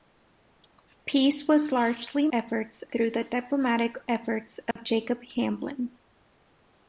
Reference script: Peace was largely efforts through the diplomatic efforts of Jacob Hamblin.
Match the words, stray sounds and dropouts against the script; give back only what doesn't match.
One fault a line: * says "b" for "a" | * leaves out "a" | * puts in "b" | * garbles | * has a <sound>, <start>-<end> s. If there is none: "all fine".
* has a dropout, 4.7-4.8 s